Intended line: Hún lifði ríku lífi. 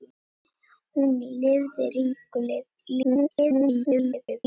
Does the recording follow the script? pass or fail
fail